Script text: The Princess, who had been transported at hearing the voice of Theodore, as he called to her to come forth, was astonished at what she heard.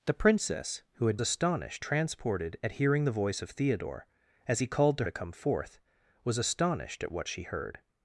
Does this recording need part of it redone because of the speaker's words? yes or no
yes